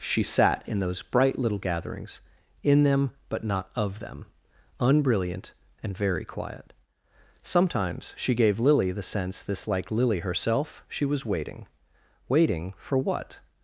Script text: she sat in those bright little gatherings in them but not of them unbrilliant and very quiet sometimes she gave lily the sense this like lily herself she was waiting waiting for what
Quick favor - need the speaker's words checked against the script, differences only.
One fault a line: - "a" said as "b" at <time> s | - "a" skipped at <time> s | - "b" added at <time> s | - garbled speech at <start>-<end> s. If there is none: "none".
none